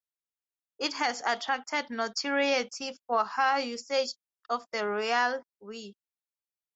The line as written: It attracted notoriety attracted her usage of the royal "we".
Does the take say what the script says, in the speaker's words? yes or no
no